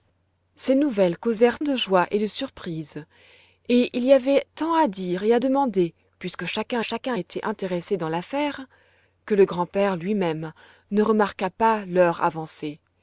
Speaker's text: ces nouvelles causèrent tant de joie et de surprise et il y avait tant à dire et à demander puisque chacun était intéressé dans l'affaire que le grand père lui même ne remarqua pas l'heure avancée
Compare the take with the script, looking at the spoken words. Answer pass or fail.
fail